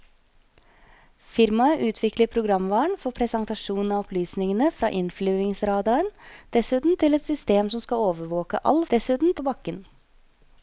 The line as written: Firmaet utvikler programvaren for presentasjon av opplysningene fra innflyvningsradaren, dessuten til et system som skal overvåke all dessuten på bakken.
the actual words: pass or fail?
pass